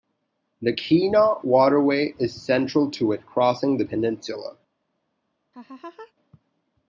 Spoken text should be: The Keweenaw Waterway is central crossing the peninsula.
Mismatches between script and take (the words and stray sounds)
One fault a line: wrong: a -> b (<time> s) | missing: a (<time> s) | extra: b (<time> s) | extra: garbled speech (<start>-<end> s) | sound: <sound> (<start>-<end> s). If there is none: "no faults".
extra: to it (2.9 s)
sound: laugh (5.5-6.1 s)